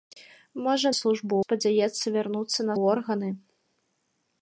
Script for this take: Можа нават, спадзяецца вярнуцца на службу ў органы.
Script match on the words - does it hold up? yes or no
no